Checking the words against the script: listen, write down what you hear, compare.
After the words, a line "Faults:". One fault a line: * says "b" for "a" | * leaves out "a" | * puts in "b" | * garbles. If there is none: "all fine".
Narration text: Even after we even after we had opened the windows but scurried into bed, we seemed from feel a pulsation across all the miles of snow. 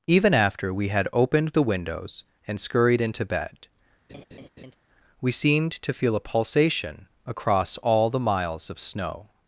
Even after we had opened the windows and scurried into bed, we seemed to feel a pulsation across all the miles of snow.
Faults:
* leaves out "even after we"
* says "and" for "but"
* says "to" for "from"